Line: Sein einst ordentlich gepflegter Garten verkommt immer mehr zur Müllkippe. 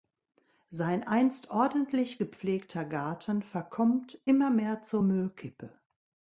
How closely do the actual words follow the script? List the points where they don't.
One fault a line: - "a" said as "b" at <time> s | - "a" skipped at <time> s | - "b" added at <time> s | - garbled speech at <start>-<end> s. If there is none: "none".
none